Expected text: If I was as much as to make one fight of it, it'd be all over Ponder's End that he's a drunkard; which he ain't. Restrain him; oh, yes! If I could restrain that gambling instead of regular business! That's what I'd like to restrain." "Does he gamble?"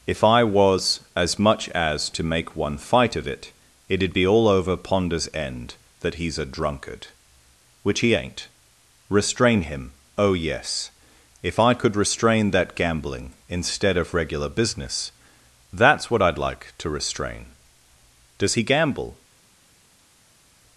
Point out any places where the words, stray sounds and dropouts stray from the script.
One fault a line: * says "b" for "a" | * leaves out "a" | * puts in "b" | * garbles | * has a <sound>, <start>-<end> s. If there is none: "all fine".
all fine